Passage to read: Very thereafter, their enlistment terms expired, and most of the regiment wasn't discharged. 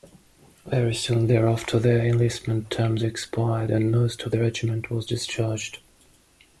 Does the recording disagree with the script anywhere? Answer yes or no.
yes